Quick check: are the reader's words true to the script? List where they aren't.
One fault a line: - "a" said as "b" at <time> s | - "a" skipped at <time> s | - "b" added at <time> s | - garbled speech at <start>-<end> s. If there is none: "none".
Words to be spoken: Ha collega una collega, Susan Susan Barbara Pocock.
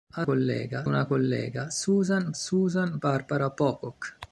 none